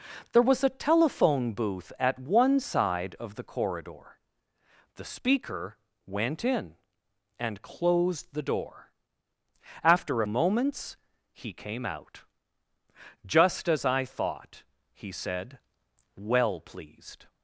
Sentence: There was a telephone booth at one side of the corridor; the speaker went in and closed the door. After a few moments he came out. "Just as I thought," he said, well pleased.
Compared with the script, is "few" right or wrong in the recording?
wrong